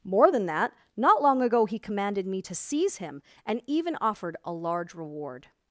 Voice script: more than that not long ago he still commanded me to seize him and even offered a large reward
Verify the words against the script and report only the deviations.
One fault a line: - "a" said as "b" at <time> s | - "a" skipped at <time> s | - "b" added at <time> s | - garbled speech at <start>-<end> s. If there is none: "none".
- "still" skipped at 1.8 s